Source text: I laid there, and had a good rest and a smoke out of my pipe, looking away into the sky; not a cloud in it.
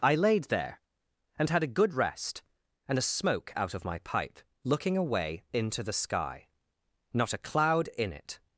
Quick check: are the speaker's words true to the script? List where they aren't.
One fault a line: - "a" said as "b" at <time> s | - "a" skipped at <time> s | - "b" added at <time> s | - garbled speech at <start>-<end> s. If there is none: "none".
none